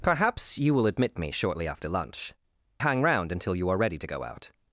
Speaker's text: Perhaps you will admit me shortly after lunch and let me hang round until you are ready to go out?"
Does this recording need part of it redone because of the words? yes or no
yes